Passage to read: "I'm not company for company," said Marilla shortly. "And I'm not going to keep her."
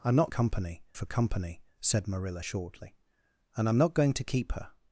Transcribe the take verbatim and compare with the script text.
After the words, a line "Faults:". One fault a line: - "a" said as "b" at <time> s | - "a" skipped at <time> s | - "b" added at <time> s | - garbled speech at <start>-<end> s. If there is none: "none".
"I'm not company for company," said Marilla shortly. "And I'm not going to keep her."
Faults:
none